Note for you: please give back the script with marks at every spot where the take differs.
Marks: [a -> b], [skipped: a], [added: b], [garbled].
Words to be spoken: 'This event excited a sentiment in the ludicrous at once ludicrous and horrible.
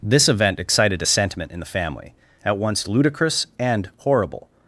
'This event excited a sentiment in the [ludicrous -> family] at once ludicrous and horrible.